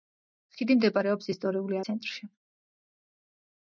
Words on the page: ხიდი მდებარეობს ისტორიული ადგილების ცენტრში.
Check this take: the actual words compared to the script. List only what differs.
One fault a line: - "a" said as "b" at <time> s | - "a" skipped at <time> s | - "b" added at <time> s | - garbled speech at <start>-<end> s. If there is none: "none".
- "ადგილების" skipped at 1.8 s